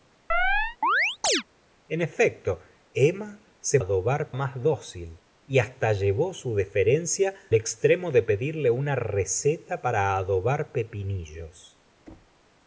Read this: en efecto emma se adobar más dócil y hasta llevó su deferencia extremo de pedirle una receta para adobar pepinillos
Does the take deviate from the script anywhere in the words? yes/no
no